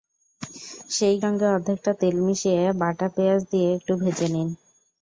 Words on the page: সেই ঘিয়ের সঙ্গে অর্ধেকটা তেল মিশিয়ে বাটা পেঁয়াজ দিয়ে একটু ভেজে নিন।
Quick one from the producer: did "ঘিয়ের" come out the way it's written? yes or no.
no